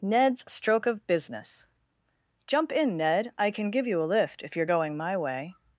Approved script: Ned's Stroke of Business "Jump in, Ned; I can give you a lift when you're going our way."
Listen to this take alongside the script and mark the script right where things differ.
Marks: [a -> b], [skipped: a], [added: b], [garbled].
Ned's Stroke of Business "Jump in, Ned; I can give you a lift [when -> if] you're going [our -> my] way."